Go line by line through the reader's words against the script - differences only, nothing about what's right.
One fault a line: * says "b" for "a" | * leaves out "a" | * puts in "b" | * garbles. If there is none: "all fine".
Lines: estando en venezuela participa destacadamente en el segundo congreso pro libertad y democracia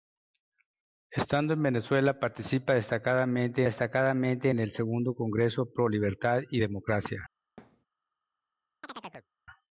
* puts in "destacadamente"